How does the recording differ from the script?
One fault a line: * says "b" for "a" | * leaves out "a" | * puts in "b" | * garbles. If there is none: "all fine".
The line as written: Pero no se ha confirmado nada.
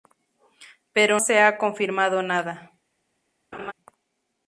* leaves out "no"